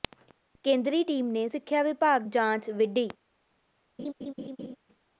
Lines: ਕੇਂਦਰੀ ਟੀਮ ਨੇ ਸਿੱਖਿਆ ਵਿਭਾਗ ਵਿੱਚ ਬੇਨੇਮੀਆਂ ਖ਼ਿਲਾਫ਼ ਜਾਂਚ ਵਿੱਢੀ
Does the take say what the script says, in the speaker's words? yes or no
no